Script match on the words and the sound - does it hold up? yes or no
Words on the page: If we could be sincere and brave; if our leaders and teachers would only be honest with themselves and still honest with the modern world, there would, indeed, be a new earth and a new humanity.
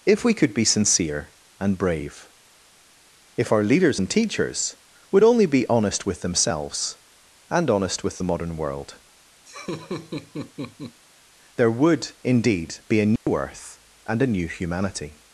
no